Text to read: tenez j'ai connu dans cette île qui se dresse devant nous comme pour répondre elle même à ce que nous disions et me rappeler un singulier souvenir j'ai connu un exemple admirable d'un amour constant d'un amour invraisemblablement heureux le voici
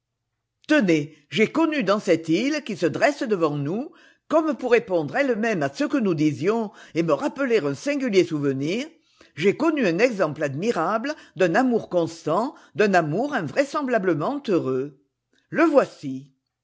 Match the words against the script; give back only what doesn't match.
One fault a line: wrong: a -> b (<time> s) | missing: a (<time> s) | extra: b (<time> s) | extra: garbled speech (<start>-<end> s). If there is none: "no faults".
no faults